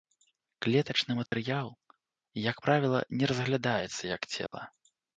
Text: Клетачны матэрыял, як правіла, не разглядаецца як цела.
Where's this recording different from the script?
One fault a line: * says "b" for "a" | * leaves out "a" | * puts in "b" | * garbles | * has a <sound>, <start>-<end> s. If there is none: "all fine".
* has a dropout, 1.3-1.3 s
* has a dropout, 4.5-4.5 s